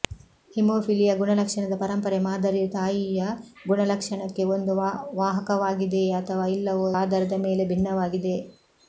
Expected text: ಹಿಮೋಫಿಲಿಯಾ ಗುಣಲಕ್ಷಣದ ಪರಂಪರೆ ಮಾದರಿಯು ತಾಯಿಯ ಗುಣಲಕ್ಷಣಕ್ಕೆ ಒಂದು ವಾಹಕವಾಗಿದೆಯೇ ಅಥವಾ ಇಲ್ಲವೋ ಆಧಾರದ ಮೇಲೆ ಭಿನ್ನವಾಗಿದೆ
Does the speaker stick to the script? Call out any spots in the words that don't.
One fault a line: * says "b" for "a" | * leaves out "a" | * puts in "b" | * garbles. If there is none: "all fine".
all fine